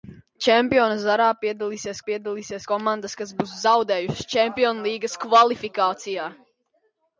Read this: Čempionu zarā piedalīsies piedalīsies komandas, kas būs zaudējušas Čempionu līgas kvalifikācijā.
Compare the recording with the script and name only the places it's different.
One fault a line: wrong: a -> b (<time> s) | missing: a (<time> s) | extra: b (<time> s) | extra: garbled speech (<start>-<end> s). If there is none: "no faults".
no faults